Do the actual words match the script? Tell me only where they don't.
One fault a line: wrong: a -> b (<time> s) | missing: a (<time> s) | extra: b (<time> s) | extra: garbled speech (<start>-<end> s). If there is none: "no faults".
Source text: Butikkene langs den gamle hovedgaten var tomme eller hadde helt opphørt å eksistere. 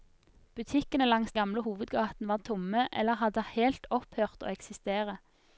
missing: den (1.3 s)